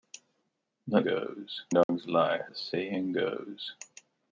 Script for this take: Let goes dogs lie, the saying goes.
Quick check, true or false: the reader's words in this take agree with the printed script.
true